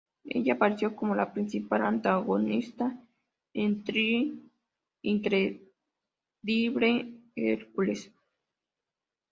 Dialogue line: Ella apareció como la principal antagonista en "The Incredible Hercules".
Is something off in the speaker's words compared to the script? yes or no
no